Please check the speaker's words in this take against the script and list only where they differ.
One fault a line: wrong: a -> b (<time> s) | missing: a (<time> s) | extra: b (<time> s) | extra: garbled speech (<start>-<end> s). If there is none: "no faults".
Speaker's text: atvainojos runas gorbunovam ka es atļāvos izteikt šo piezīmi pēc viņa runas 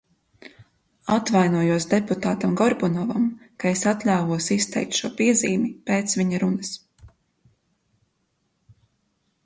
wrong: runas -> deputātam (1.9 s)